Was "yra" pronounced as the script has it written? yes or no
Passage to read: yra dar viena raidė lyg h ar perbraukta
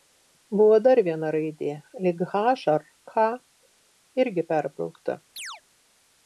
no